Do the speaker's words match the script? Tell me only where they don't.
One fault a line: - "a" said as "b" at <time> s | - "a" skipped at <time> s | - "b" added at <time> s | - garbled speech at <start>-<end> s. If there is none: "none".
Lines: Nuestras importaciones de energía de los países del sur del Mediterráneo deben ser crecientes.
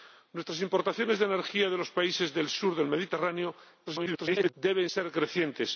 - garbled speech at 3.9-4.5 s